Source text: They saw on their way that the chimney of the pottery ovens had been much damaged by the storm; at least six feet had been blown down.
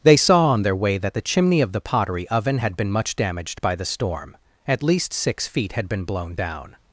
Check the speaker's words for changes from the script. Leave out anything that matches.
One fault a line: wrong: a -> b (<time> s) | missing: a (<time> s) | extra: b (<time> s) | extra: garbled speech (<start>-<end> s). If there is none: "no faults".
wrong: ovens -> oven (2.3 s)